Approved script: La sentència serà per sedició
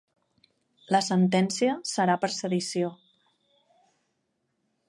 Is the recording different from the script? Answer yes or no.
no